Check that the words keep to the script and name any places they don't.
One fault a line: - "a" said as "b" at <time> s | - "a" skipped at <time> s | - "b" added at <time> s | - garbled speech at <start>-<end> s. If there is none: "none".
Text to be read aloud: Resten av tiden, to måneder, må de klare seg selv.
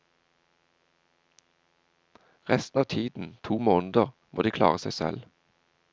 none